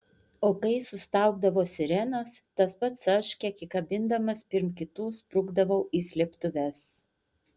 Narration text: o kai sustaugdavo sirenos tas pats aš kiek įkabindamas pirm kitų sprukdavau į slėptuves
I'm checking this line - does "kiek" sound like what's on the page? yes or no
yes